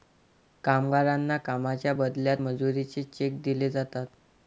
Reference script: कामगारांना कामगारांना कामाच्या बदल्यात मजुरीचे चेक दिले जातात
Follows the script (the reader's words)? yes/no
no